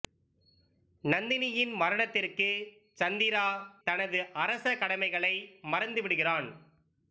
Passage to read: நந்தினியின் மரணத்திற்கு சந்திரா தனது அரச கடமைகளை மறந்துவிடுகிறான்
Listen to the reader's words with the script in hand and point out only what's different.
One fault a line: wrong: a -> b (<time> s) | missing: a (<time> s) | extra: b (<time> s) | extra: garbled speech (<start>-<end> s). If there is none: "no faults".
no faults